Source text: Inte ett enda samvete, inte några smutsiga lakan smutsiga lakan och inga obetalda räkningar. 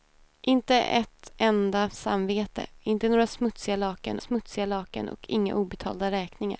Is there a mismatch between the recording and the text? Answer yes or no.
no